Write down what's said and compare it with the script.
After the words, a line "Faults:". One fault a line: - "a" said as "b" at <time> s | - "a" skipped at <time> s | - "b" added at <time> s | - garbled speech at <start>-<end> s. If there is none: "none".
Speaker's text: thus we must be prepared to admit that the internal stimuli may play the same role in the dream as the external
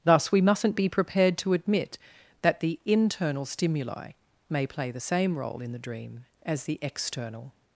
thus we mustn't be prepared to admit that the internal stimuli may play the same role in the dream as the external
Faults:
- "must" said as "mustn't" at 0.4 s